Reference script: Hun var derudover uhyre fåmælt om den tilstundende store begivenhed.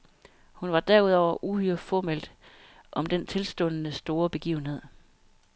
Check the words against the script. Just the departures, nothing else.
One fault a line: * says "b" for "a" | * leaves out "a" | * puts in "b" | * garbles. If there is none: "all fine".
all fine